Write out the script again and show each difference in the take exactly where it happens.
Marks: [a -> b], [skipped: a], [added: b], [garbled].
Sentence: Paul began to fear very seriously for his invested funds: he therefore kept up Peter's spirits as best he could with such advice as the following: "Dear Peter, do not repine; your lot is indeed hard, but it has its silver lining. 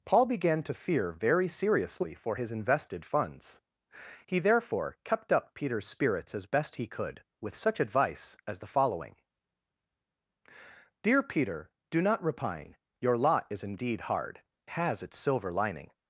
Paul began to fear very seriously for his invested funds: he therefore kept up Peter's spirits as best he could with such advice as the following: "Dear Peter, do not repine; your lot is indeed hard, [skipped: but it] has its silver lining.